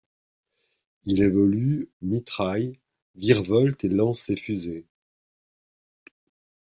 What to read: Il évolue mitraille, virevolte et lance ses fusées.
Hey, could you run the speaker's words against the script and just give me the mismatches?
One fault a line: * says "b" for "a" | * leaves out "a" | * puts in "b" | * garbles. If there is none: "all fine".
all fine